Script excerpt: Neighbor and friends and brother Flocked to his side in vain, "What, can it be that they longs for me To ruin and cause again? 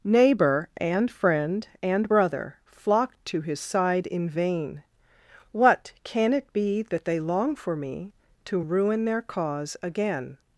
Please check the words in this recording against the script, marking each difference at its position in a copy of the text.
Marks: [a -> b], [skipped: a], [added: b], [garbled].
Neighbor and [friends -> friend] and brother Flocked to his side in vain, "What, can it be that they [longs -> long] for me To ruin [and -> their] cause again?